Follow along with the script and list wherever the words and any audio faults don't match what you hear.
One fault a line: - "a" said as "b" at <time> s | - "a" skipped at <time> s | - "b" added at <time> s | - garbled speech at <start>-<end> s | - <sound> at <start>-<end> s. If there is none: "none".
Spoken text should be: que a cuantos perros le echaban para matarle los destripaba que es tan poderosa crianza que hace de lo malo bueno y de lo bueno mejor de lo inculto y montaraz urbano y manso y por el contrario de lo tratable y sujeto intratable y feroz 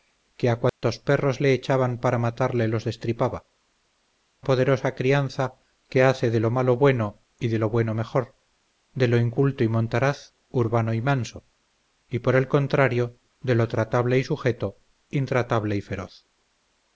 - dropout at 0.7-0.8 s
- "que es tan" skipped at 3.5 s